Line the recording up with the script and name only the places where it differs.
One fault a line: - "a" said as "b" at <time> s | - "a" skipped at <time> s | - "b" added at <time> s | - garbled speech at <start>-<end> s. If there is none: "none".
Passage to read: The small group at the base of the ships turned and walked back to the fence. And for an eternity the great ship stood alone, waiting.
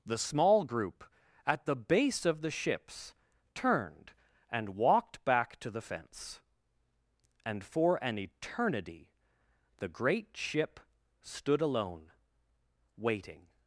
none